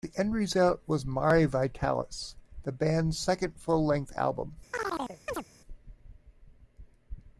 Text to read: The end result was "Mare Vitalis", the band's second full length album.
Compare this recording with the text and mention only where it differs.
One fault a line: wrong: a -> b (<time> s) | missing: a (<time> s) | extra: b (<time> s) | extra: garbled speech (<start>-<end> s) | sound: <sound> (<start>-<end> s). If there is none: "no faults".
sound: chirp (4.7-5.4 s)